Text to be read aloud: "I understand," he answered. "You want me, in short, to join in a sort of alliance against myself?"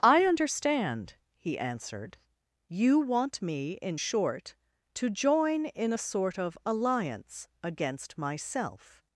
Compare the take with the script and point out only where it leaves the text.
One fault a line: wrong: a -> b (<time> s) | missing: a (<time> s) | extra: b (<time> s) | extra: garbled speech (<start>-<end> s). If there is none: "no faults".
no faults